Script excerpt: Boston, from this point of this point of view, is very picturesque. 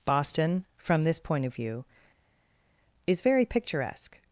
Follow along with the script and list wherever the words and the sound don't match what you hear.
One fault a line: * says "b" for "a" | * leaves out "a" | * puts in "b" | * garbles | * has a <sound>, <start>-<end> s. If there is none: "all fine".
* leaves out "this point of"